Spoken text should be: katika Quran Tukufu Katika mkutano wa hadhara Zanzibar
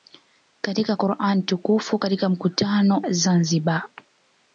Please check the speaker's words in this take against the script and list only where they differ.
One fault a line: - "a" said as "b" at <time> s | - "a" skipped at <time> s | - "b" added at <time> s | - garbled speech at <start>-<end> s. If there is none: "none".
- "wa hadhara" skipped at 3.0 s